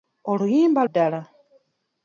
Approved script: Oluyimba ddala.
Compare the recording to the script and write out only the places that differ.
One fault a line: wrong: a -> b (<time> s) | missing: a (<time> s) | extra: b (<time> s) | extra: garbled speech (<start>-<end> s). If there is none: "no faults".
no faults